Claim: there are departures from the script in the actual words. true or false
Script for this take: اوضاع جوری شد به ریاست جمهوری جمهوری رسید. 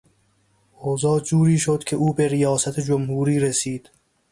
true